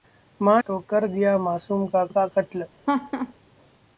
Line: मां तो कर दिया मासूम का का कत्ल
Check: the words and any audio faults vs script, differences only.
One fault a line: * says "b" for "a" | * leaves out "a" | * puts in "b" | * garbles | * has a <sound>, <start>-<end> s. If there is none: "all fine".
* has a laugh, 2.9-3.3 s